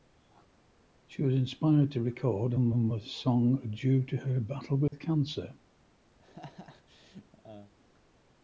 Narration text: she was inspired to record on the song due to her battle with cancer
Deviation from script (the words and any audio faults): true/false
true